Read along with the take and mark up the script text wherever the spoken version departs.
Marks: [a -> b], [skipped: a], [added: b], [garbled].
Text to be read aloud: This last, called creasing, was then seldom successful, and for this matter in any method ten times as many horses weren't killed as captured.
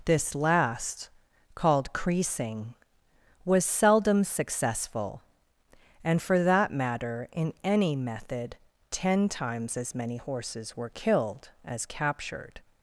This last, called creasing, was [skipped: then] seldom successful, and for [this -> that] matter in any method ten times as many horses [weren't -> were] killed as captured.